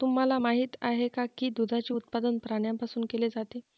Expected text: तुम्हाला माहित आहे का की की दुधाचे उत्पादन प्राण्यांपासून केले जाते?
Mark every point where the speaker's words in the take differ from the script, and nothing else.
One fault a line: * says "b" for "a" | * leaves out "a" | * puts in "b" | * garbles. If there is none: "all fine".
* leaves out "की"